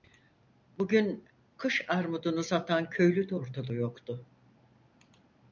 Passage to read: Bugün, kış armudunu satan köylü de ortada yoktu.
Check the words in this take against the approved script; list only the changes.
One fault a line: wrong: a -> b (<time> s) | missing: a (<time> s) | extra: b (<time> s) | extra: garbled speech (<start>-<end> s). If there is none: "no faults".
no faults